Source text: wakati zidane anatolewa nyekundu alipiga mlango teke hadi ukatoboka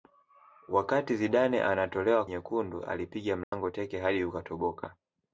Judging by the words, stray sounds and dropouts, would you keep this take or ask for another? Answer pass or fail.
fail